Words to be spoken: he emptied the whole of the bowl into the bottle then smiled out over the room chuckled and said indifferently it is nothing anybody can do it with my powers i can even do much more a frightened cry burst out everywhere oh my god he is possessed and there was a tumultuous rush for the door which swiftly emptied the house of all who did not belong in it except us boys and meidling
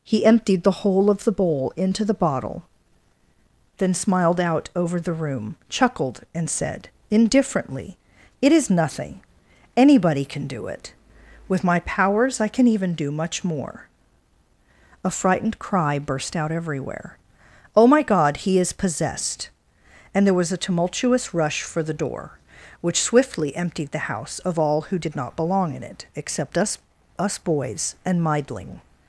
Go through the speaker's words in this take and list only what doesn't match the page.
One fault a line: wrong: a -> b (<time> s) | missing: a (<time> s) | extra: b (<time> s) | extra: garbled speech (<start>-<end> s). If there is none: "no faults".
extra: us (27.2 s)